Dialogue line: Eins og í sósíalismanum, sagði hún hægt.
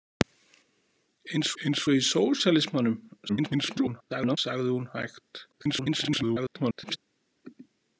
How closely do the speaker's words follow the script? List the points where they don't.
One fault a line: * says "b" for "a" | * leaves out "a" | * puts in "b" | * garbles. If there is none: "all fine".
* puts in "eins"
* garbles
* garbles